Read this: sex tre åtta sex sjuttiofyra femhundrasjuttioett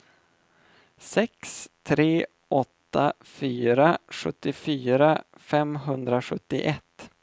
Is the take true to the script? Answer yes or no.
no